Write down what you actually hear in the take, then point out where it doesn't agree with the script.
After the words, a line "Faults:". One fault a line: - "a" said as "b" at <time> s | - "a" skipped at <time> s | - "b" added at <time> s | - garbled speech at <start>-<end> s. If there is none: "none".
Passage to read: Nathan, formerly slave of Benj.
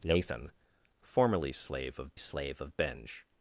Nathan, formerly slave of slave of Benj.
Faults:
- "slave of" added at 2.2 s